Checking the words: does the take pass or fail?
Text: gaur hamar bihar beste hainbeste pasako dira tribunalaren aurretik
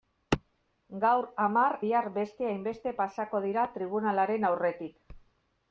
pass